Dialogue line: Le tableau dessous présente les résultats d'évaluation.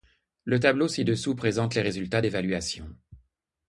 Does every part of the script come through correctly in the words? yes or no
no